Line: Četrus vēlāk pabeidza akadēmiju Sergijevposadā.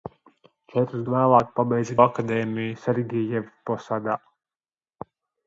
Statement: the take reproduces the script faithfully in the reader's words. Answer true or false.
true